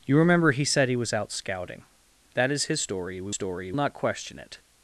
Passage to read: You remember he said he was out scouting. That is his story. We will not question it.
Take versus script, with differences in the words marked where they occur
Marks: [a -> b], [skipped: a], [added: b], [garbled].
You remember he said he was out scouting. That is his story. We [will -> story] not question it.